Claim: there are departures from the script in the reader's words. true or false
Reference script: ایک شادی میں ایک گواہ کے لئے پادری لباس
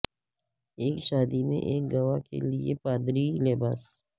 false